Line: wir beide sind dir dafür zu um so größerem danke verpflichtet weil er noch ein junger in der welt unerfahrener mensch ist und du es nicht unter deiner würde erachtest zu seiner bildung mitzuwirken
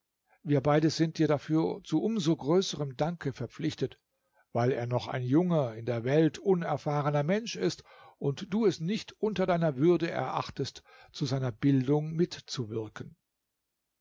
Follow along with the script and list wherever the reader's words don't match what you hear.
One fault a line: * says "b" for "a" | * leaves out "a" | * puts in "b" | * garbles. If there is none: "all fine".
all fine